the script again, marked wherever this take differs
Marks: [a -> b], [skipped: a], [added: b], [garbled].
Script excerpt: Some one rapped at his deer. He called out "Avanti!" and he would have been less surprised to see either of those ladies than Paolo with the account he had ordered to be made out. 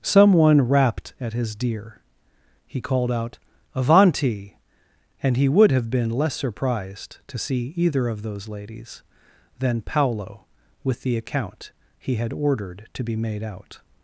Some one rapped at his deer. He called out "Avanti!" and he would have been less surprised to see either of those ladies than Paolo with the account he had ordered to be made out.